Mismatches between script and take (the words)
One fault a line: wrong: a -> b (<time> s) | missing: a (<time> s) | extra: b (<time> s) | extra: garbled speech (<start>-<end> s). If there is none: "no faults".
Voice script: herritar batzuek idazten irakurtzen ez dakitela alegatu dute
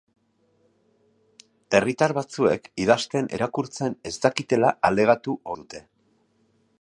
no faults